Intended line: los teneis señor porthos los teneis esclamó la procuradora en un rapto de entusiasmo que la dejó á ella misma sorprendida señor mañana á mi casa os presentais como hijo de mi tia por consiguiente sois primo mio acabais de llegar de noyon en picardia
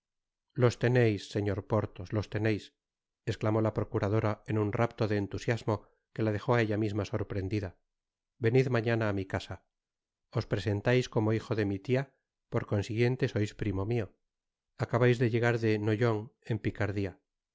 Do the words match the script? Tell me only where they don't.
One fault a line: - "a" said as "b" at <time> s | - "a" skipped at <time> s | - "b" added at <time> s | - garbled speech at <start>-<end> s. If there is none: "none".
- "señor" said as "venid" at 8.4 s